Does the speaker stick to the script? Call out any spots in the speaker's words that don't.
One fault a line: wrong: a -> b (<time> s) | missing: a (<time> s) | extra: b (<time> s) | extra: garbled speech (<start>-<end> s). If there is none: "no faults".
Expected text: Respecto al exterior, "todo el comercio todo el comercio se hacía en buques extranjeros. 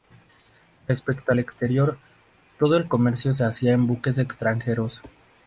missing: todo el comercio (3.4 s)